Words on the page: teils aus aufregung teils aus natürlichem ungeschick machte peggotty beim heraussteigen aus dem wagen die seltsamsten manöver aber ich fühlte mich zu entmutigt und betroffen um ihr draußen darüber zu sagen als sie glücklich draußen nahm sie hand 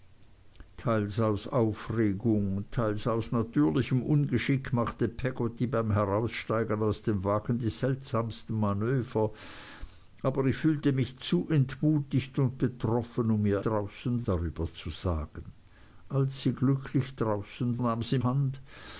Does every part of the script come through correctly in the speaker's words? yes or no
yes